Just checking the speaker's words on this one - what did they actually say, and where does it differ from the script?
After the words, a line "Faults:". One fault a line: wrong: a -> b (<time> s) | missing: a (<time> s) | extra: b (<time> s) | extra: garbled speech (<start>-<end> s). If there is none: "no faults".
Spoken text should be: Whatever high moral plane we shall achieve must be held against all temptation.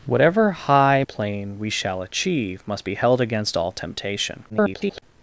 Whatever high plane we shall achieve must be held against all temptation. [garbled]
Faults:
missing: moral (1.0 s)
extra: garbled speech (4.5-5.0 s)